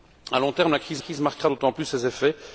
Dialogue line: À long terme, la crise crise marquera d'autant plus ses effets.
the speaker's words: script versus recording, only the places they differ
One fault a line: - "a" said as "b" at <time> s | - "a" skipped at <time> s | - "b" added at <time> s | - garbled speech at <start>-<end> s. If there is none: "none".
none